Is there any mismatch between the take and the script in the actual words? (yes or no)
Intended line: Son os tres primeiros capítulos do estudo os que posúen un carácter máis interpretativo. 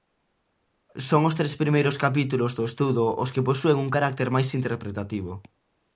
no